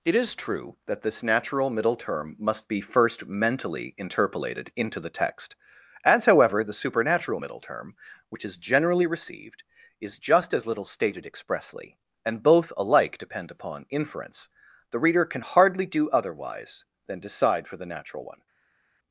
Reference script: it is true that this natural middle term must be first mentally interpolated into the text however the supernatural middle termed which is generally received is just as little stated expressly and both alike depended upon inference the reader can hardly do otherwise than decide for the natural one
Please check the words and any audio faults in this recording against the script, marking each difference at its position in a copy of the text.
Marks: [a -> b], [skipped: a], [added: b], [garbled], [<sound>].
it is true that this natural middle term must be first mentally interpolated into the text [added: as] however the supernatural middle [termed -> term] which is generally received is just as little stated expressly and both alike [depended -> depend] upon inference the reader can hardly do otherwise than decide for the natural one